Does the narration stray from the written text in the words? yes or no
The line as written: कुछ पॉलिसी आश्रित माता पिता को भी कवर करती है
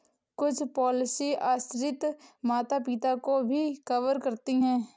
no